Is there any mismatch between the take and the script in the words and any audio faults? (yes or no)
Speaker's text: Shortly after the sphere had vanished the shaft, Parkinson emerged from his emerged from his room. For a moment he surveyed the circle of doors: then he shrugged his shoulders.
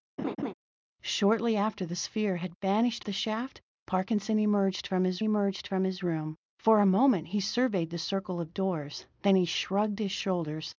yes